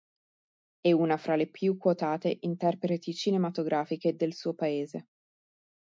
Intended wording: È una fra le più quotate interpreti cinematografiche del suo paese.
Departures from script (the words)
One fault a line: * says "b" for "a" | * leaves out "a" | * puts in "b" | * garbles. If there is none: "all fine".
all fine